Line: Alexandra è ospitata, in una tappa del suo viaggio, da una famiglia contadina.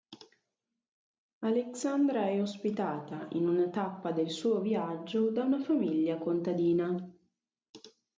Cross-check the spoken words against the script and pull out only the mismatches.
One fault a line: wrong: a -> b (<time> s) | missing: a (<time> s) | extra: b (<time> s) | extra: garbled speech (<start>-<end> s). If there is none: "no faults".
no faults